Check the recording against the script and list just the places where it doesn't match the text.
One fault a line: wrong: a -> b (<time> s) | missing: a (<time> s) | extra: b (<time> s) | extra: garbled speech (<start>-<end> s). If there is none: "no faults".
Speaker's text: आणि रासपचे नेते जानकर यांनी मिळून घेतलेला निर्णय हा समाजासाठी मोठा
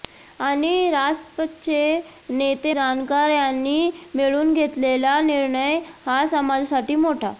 no faults